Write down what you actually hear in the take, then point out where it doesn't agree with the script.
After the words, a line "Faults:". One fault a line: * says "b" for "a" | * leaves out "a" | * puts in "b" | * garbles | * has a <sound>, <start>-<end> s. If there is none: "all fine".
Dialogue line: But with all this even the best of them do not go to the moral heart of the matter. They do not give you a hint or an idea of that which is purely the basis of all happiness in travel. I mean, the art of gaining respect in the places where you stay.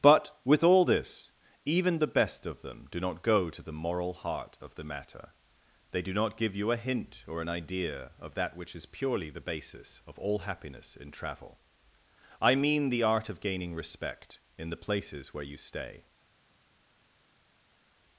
But with all this even the best of them do not go to the moral heart of the matter. They do not give you a hint or an idea of that which is purely the basis of all happiness in travel. I mean, the art of gaining respect in the places where you stay.
Faults:
all fine